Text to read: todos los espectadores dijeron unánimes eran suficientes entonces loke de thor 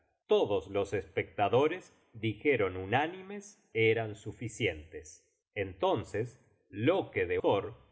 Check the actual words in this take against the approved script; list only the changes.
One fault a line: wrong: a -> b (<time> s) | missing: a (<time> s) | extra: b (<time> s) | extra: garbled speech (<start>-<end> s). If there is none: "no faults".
no faults